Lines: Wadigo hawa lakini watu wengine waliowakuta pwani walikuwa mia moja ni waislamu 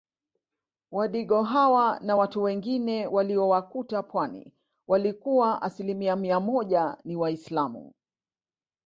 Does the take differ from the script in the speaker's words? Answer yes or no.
yes